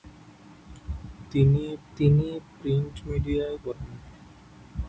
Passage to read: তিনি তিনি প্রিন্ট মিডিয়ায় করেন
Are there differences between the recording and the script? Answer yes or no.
no